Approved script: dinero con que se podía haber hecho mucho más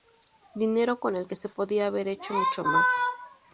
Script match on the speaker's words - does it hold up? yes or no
no